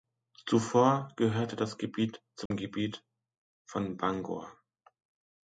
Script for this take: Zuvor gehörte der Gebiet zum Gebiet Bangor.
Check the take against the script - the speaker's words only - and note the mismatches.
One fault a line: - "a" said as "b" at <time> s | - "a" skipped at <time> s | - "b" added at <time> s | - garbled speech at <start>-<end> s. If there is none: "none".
- "der" said as "das" at 1.6 s
- "von" added at 3.6 s